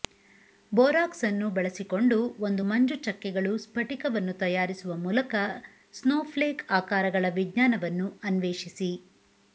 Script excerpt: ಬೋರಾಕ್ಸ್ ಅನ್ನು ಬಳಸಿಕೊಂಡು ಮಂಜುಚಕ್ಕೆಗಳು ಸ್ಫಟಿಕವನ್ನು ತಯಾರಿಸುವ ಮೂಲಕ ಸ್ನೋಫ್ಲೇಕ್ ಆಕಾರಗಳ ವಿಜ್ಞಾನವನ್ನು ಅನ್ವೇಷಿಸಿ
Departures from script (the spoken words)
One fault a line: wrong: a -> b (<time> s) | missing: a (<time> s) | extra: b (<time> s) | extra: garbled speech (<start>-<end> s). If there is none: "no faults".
extra: ಒಂದು (2.4 s)